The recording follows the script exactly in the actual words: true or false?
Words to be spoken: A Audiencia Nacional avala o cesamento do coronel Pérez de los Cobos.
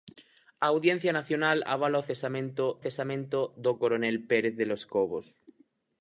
false